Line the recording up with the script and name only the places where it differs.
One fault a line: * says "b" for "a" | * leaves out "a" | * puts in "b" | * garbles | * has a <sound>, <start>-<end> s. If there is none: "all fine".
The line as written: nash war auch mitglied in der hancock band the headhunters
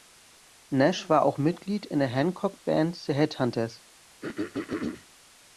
* has a throat clearing, 4.2-5.1 s